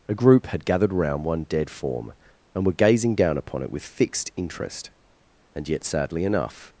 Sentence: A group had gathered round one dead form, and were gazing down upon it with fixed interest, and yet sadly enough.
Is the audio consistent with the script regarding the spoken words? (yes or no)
yes